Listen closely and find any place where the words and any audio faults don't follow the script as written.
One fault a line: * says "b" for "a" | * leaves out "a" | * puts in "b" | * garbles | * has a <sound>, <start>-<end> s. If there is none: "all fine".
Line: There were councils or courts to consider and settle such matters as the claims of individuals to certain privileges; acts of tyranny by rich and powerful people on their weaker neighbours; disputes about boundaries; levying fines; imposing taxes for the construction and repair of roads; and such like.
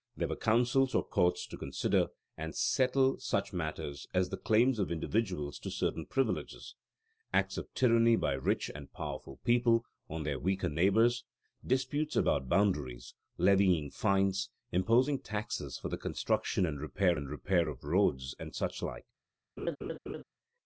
* puts in "and repair"
* has a laugh, 19.6-20.2 s